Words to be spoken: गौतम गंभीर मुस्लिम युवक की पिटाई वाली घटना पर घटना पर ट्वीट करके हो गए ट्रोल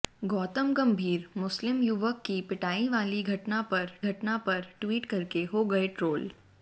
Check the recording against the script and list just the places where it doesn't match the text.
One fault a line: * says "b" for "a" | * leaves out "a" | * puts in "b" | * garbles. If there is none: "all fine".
all fine